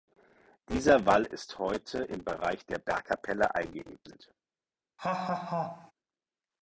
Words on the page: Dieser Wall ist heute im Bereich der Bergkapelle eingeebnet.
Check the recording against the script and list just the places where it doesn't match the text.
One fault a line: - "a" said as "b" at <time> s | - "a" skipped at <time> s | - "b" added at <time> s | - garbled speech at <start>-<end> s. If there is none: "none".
none